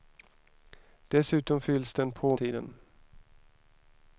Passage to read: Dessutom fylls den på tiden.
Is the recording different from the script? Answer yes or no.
no